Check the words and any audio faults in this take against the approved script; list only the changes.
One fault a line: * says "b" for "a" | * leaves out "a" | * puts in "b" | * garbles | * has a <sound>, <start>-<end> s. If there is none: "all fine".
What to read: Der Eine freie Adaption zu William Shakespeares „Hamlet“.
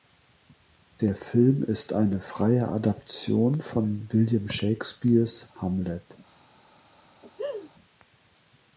* puts in "Film ist"
* says "von" for "zu"
* has a laugh, 7.2-7.7 s